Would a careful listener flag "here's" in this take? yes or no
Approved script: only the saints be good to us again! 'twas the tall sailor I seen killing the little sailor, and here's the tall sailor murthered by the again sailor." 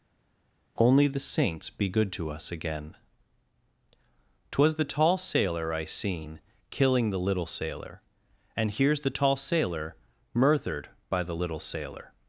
no